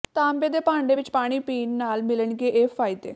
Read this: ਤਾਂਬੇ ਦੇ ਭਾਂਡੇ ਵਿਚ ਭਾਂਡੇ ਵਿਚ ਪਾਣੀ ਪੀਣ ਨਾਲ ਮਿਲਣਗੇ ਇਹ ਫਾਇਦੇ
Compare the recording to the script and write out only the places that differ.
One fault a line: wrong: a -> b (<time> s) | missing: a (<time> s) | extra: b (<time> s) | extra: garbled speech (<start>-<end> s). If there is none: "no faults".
missing: ਭਾਂਡੇ ਵਿਚ (1.1 s)